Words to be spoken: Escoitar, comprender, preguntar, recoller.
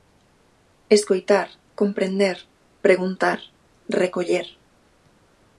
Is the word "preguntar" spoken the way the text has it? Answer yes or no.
yes